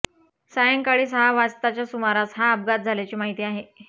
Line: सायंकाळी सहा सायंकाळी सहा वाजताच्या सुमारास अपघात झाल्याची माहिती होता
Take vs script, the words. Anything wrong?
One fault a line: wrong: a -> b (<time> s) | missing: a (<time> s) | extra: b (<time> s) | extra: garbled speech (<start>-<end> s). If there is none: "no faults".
missing: सायंकाळी सहा (1.3 s)
extra: हा (2.4 s)
wrong: होता -> आहे (3.4 s)